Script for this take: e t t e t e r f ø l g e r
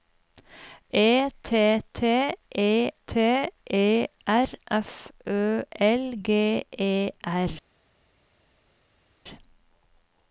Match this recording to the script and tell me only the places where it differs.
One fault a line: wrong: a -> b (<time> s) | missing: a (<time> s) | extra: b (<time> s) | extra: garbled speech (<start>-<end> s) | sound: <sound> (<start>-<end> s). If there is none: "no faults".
no faults